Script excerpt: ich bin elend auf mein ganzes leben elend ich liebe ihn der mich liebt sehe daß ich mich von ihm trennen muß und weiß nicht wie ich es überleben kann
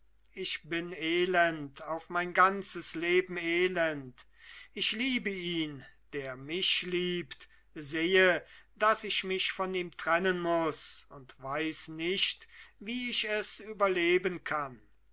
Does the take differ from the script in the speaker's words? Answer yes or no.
no